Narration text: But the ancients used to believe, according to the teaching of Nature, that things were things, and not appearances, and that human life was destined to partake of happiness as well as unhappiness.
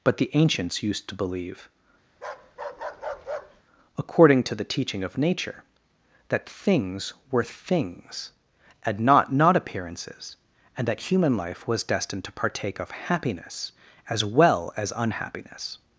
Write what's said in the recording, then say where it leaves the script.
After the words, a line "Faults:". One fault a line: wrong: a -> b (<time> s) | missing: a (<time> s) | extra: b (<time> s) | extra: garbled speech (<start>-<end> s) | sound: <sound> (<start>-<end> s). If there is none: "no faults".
But the ancients used to believe, according to the teaching of Nature, that things were things, and not not appearances, and that human life was destined to partake of happiness as well as unhappiness.
Faults:
sound: bark (2.1-3.6 s)
extra: not (9.3 s)